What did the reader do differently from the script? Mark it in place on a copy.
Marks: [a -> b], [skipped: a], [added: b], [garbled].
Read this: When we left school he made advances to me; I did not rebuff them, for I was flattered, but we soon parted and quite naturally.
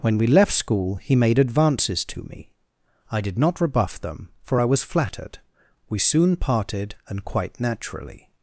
When we left school he made advances to me; I did not rebuff them, for I was flattered, [skipped: but] we soon parted and quite naturally.